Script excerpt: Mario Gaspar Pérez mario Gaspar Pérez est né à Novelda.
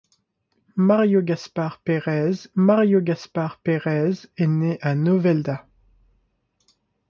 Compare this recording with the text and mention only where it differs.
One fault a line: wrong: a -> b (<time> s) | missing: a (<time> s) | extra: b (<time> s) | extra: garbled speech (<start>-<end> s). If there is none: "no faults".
no faults